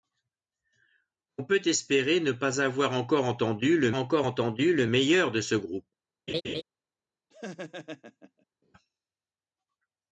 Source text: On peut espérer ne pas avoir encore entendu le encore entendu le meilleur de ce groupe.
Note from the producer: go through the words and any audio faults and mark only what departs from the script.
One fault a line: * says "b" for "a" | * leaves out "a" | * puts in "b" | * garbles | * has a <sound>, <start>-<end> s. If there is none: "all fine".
* has a laugh, 6.3-6.6 s
* has a laugh, 7.3-8.5 s